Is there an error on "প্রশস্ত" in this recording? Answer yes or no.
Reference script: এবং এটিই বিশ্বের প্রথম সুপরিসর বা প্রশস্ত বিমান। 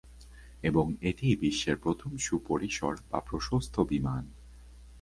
no